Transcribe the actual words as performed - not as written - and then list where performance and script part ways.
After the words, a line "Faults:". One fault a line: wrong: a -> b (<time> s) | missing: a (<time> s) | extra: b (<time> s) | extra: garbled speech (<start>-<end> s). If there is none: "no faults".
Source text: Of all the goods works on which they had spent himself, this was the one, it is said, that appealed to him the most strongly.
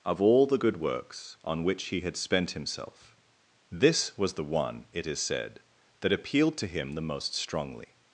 Of all the good works on which he had spent himself, this was the one, it is said, that appealed to him the most strongly.
Faults:
wrong: goods -> good (0.6 s)
wrong: they -> he (1.9 s)